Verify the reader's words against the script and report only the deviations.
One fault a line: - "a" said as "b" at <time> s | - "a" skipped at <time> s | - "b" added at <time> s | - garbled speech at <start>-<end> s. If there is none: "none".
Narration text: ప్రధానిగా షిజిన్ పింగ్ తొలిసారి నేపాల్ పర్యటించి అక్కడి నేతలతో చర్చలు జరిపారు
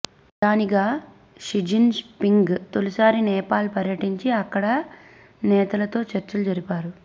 none